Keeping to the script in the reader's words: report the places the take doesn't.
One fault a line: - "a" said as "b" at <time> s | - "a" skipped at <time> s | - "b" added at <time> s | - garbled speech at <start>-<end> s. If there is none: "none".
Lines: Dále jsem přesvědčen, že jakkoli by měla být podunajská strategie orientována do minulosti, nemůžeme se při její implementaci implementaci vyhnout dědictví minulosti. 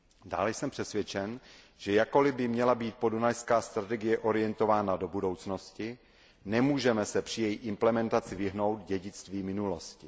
- "minulosti" said as "budoucnosti" at 5.1 s
- "implementaci" skipped at 8.3 s